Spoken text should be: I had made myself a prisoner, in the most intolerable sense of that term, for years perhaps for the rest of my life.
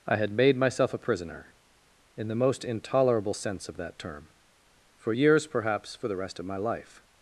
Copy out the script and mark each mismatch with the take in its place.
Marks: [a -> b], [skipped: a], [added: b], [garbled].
I had made myself a prisoner, in the most intolerable sense of that term, for years perhaps for the rest of my life.